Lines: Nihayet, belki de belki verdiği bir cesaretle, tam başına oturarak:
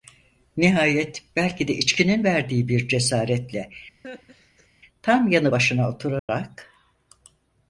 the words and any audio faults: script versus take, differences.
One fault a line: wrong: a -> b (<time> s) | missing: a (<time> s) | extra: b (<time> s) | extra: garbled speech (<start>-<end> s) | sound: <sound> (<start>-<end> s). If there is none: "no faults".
wrong: belki -> içkinin (1.7 s)
sound: laugh (4.0-4.7 s)
extra: yanı (5.3 s)
sound: dropout (6.2-6.3 s)